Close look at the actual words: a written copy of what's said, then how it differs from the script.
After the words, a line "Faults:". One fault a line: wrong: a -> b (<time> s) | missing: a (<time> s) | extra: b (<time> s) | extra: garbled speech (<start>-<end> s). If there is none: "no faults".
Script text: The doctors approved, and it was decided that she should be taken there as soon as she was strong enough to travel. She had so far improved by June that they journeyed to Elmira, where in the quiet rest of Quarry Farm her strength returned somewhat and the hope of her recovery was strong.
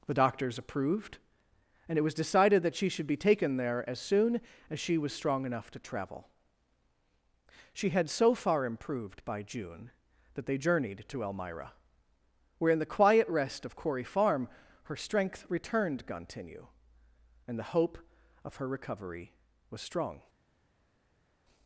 The doctors approved, and it was decided that she should be taken there as soon as she was strong enough to travel. She had so far improved by June that they journeyed to Elmira, where in the quiet rest of Quarry Farm her strength returned gontinue and the hope of her recovery was strong.
Faults:
wrong: somewhat -> gontinue (16.1 s)